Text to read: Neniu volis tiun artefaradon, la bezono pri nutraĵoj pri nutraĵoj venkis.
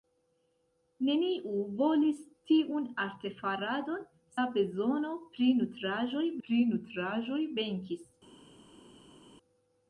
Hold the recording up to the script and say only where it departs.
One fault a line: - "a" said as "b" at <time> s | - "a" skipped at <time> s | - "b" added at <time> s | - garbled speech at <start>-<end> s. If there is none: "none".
none